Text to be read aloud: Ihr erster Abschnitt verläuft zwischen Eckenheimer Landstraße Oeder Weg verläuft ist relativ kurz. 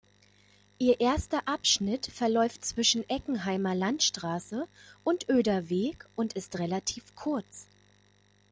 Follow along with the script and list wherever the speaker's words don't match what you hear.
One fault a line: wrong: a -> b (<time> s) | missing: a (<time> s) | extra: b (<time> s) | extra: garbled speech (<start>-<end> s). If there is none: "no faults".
extra: und (5.0 s)
wrong: verläuft -> und (6.2 s)